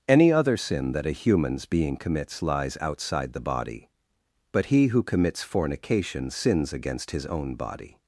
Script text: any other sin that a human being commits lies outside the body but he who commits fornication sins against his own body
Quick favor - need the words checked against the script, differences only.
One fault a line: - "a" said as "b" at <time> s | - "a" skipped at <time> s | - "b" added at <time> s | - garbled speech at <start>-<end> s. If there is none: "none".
- "human" said as "humans" at 1.1 s